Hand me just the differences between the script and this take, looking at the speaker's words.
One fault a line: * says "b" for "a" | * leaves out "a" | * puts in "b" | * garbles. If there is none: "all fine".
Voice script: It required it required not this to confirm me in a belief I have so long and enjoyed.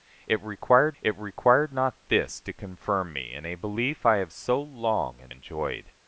all fine